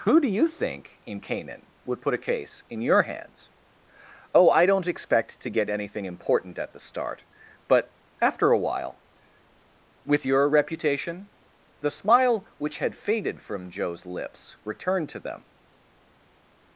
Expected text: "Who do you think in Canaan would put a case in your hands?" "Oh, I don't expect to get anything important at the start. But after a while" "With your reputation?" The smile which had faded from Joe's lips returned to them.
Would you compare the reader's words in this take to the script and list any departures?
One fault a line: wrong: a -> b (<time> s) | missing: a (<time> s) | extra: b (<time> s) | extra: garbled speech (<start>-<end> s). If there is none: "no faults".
no faults